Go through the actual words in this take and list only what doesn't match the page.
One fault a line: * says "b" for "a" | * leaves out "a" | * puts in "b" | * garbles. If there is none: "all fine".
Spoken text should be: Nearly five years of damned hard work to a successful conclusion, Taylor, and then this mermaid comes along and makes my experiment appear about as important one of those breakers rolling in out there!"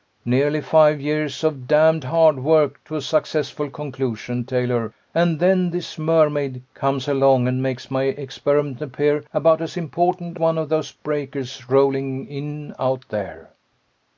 all fine